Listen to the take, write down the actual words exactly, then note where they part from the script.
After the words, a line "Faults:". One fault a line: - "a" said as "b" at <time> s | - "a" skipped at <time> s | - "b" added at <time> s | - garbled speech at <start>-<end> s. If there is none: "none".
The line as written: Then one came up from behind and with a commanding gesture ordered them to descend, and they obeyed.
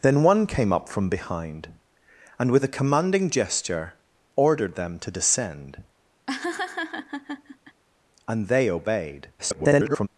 Then one came up from behind and with a commanding gesture ordered them to descend, and they obeyed. [garbled]
Faults:
- garbled speech at 9.4-10.1 s